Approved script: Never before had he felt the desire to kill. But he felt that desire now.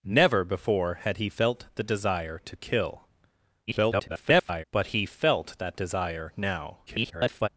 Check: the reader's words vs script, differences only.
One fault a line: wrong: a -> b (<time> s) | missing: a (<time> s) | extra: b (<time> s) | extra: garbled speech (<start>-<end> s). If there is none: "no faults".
extra: garbled speech (3.7-4.6 s)
extra: garbled speech (6.9-7.5 s)